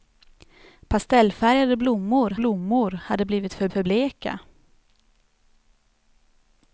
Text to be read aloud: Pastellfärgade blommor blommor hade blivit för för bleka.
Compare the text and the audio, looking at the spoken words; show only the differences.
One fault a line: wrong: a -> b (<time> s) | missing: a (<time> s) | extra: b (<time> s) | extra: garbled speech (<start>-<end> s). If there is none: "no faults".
no faults